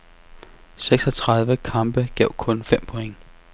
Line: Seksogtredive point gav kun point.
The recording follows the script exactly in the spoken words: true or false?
false